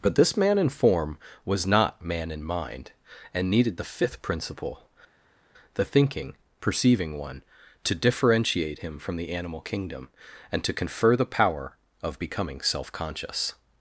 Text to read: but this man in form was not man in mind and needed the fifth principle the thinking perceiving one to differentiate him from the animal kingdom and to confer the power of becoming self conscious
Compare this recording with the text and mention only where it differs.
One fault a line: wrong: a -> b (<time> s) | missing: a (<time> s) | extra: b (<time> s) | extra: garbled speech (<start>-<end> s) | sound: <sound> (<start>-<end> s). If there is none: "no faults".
no faults